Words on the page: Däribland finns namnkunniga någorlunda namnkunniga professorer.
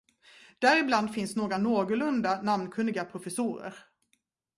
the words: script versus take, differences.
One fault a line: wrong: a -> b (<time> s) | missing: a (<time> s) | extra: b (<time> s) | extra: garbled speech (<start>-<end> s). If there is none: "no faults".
wrong: namnkunniga -> några (1.4 s)